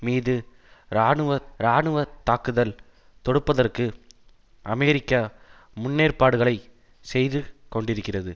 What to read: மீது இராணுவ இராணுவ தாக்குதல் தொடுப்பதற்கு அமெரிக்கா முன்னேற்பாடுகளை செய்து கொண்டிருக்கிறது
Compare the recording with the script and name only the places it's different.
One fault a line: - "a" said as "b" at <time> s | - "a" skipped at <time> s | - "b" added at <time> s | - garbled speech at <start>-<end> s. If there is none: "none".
none